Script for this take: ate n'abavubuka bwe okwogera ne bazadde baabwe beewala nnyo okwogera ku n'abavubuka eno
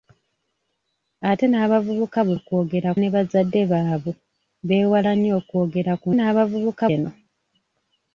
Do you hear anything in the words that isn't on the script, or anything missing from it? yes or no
no